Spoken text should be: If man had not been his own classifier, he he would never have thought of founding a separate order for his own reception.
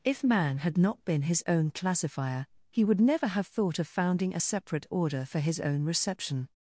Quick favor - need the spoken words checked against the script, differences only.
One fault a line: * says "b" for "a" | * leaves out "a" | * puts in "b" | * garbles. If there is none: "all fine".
* leaves out "he"